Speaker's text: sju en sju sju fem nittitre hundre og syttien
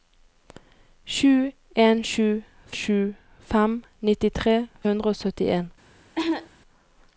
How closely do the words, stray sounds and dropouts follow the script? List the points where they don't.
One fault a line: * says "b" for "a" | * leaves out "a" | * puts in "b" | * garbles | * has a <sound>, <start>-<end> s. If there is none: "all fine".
* has a cough, 6.2-6.5 s